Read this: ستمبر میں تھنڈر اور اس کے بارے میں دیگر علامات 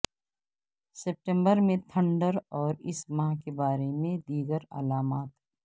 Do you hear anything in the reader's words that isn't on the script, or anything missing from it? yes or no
yes